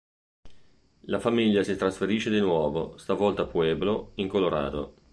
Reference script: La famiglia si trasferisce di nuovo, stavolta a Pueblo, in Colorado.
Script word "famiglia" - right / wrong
right